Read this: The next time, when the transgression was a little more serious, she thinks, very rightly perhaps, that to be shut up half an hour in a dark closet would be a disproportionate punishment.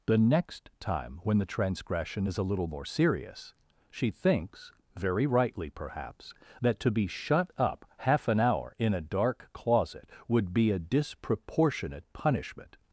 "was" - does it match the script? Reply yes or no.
no